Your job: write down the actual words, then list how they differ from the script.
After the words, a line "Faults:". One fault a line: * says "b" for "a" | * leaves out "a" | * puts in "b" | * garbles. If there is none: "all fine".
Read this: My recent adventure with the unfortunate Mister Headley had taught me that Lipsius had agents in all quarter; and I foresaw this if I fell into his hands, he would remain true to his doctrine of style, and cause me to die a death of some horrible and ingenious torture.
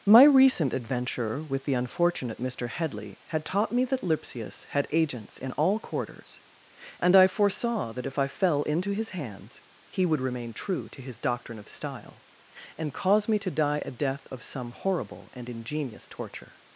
My recent adventure with the unfortunate Mister Headley had taught me that Lipsius had agents in all quarters; and I foresaw that if I fell into his hands, he would remain true to his doctrine of style, and cause me to die a death of some horrible and ingenious torture.
Faults:
* says "quarters" for "quarter"
* says "that" for "this"